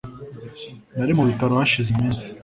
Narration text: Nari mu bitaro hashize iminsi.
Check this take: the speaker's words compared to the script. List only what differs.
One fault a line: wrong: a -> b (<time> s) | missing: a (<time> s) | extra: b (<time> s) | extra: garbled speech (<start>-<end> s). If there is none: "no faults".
no faults